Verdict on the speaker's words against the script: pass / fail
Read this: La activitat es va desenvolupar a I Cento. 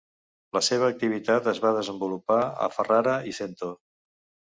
fail